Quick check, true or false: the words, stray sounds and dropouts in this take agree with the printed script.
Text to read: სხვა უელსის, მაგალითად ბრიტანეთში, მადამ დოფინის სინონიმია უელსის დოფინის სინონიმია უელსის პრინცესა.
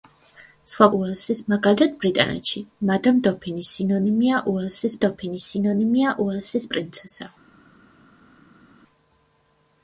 true